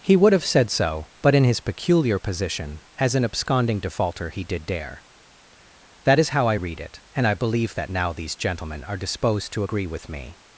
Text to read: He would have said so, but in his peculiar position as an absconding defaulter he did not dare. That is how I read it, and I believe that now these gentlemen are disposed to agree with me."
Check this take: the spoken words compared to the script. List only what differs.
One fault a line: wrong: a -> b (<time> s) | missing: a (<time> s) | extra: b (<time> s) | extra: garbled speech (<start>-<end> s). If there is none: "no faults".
missing: not (4.7 s)